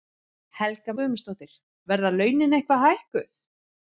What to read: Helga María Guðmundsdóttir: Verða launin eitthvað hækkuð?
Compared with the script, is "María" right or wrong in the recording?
wrong